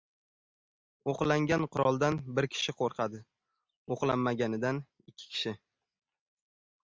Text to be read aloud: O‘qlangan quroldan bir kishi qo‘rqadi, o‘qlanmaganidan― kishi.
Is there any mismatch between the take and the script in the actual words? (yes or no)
yes